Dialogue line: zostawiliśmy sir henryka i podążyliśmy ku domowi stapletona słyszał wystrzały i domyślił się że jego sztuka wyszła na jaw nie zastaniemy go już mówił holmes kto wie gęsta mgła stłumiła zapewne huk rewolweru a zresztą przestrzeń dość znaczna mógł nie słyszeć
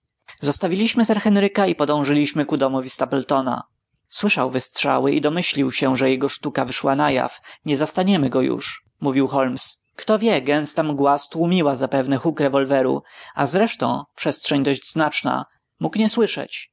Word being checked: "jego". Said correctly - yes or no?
yes